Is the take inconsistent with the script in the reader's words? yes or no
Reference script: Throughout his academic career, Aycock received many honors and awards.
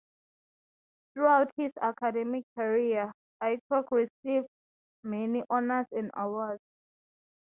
no